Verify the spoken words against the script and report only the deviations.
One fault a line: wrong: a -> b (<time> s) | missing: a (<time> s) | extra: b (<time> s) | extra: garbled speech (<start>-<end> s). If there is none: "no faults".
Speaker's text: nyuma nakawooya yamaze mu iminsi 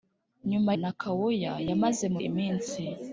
no faults